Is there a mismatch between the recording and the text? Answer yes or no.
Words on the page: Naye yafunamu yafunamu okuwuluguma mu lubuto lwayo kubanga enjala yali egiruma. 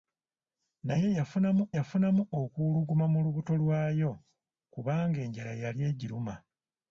no